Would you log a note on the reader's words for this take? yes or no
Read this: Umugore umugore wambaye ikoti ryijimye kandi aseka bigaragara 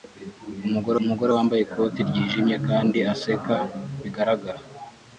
no